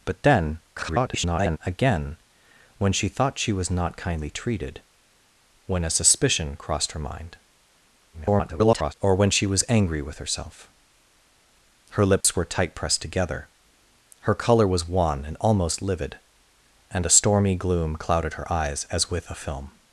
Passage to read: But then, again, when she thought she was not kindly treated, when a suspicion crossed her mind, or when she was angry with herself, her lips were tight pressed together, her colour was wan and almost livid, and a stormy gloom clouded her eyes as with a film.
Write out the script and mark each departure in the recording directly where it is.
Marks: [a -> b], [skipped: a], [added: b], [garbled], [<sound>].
But then, [garbled] again, when she thought she was not kindly treated, when a suspicion crossed her mind, [garbled] or when she was angry with herself, her lips [dropout] were tight pressed together, her colour was wan and almost livid, and a stormy gloom clouded her eyes as with a film.